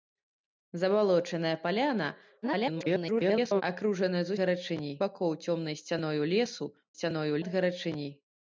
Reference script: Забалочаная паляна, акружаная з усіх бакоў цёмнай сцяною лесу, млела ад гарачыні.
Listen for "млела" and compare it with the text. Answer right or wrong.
wrong